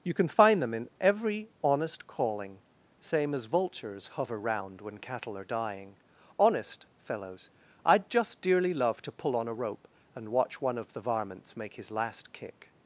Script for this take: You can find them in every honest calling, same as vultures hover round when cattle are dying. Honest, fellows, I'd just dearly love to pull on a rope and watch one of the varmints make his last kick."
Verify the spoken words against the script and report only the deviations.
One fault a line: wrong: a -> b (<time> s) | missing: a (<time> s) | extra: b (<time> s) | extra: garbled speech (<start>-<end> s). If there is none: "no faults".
no faults